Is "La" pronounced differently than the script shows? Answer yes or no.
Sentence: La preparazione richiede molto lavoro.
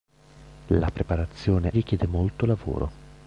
no